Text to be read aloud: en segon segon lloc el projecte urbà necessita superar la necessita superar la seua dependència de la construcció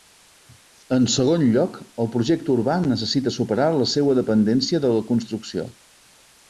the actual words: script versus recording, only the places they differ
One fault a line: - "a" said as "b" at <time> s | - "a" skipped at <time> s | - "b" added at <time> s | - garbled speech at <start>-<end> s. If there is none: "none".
- "segon" skipped at 1.4 s
- "necessita superar la" skipped at 3.9 s